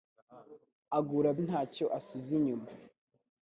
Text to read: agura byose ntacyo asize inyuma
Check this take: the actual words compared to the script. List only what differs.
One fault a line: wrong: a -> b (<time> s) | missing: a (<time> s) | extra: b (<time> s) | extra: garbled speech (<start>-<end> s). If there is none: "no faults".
missing: byose (1.3 s)